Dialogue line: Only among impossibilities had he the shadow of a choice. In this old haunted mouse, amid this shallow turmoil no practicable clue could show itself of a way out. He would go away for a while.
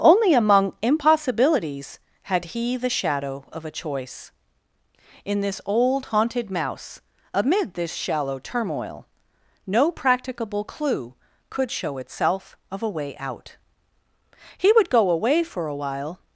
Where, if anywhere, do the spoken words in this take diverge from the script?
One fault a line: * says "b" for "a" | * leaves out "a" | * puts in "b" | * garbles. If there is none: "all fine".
all fine